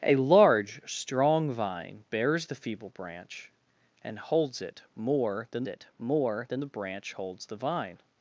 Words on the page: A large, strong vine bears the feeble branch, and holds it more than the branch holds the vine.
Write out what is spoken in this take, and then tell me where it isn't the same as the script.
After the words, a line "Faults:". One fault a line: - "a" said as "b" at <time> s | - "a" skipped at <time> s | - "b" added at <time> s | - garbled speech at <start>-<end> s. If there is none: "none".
A large, strong vine bears the feeble branch, and holds it more than it more than the branch holds the vine.
Faults:
- "it more than" added at 5.6 s